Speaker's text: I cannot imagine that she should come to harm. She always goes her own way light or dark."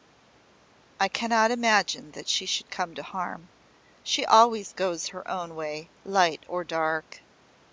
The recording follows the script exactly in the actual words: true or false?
true